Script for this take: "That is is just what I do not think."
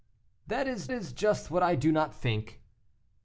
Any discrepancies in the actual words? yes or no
no